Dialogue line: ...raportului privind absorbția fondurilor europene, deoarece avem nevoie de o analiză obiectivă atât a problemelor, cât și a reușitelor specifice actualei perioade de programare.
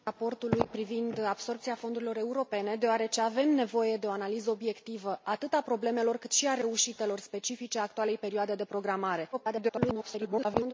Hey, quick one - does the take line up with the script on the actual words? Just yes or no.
no